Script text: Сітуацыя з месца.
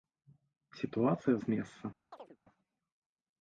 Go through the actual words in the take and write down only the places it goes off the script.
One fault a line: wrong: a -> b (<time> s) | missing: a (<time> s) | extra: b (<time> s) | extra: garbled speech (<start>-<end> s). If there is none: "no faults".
no faults